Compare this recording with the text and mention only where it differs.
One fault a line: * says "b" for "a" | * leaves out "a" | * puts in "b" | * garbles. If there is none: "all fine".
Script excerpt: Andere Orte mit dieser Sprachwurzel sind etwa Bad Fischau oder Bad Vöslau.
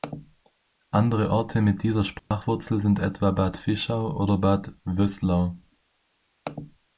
all fine